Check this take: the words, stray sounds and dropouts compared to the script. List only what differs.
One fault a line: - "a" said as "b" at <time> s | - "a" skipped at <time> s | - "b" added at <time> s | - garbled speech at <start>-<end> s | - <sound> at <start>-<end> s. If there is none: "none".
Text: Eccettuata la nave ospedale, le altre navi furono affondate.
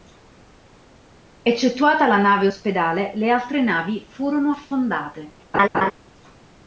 - laugh at 5.5-5.9 s